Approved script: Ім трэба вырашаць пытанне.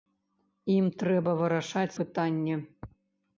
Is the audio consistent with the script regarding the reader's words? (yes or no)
yes